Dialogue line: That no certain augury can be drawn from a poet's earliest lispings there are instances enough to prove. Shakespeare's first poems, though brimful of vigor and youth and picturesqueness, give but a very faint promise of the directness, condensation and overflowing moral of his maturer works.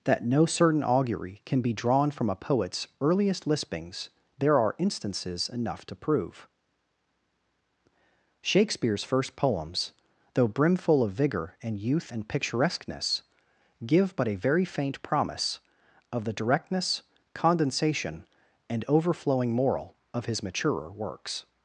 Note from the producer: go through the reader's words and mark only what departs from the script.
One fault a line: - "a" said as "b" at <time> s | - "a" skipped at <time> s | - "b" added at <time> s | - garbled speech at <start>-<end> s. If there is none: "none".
none